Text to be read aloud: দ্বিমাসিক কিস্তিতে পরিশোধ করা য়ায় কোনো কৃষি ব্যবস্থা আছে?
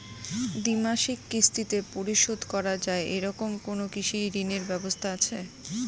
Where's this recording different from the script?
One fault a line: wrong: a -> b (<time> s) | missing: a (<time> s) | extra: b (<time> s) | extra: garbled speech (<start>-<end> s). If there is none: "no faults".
extra: এরকম (3.1 s)
extra: ঋণের (4.3 s)